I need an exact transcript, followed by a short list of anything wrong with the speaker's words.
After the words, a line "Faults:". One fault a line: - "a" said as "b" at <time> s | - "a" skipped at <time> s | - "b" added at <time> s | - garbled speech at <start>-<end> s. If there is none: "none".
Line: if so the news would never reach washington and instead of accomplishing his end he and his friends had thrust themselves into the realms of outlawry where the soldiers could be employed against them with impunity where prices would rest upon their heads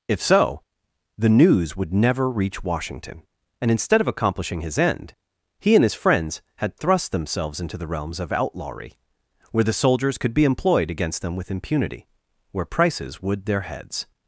if so the news would never reach washington and instead of accomplishing his end he and his friends had thrust themselves into the realms of outlawry where the soldiers could be employed against them with impunity where prices would their heads
Faults:
- "rest upon" skipped at 13.4 s